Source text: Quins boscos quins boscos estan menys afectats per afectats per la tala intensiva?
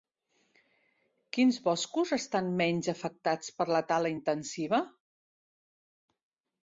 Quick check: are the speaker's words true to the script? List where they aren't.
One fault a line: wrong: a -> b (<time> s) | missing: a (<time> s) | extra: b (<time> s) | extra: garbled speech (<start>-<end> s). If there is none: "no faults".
missing: quins boscos (2.1 s)
missing: afectats per (3.7 s)